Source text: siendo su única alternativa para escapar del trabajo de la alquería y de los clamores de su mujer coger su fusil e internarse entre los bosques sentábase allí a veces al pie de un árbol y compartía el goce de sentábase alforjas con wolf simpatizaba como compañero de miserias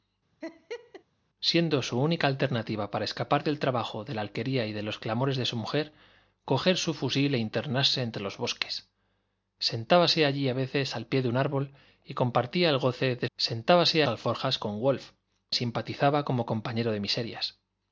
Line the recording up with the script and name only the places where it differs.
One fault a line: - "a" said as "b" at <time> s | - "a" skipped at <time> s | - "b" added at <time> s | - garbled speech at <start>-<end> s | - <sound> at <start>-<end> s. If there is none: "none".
- laugh at 0.4-1.0 s